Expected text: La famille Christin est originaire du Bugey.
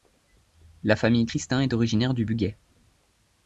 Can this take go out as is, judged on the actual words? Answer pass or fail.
pass